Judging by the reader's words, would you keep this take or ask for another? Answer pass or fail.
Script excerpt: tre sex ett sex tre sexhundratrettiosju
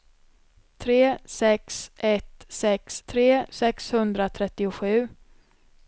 pass